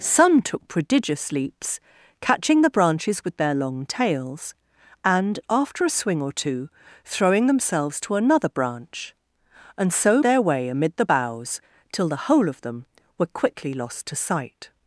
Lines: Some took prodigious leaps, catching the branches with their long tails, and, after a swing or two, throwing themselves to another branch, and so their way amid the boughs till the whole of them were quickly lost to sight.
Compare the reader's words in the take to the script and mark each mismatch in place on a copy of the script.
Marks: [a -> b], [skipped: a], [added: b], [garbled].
Some took prodigious leaps, catching the branches with their long tails, and, after a swing or two, throwing themselves to another branch, and so their way amid the boughs till the whole of them were quickly lost to sight.